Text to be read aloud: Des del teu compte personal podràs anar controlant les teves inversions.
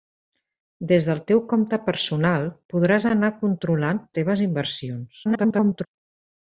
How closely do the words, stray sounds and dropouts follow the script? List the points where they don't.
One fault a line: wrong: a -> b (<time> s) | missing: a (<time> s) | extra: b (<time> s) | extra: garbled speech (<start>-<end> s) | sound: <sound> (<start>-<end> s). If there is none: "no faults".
missing: les (4.0 s)
extra: garbled speech (5.2-5.9 s)